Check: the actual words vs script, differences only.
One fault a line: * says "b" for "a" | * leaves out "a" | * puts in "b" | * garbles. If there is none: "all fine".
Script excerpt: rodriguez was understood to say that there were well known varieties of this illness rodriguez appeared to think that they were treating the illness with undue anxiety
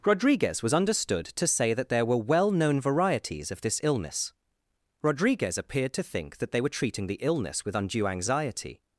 all fine